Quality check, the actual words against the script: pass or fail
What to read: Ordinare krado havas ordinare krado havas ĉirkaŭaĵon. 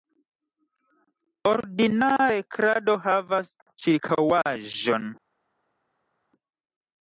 fail